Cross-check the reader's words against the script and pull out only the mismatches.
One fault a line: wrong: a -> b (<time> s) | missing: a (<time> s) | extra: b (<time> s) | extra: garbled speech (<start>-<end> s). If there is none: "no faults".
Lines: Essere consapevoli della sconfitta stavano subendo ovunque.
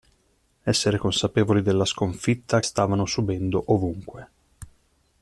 no faults